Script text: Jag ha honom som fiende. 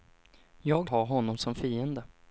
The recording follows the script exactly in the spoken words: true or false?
true